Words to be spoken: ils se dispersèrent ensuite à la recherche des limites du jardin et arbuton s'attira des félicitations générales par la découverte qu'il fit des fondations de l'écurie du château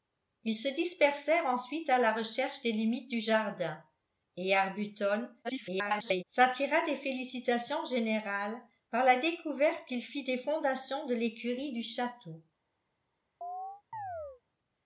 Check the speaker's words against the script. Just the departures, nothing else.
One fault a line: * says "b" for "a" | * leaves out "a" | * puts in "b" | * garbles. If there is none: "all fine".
* garbles